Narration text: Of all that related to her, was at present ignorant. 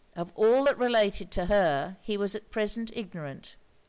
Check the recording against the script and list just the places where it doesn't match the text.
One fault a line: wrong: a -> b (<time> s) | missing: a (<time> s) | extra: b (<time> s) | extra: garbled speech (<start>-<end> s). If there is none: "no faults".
extra: he (2.0 s)